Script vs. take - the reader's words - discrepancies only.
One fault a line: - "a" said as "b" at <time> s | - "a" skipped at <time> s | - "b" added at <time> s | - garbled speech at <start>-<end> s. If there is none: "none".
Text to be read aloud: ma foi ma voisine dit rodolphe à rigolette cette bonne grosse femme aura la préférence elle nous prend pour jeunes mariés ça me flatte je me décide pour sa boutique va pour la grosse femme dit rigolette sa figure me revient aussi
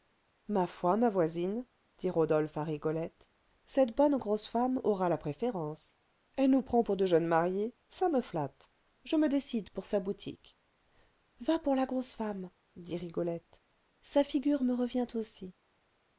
- "de" added at 6.9 s